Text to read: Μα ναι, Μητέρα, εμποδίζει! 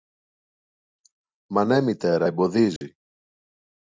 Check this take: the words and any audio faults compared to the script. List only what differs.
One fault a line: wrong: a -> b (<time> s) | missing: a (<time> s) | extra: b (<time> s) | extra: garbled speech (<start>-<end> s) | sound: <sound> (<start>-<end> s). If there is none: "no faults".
sound: dropout (2.8-2.8 s)